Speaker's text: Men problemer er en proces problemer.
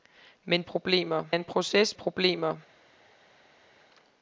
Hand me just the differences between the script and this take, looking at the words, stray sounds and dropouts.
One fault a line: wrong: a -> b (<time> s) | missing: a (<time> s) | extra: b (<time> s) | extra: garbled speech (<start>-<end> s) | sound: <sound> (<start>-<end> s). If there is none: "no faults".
no faults